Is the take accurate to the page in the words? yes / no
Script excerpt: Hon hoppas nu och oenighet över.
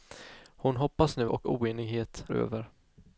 yes